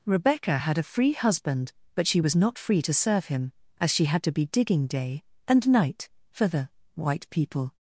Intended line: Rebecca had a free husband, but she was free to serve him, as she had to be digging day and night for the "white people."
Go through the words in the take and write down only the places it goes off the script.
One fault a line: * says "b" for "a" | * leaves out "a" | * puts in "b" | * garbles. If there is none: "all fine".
* puts in "not"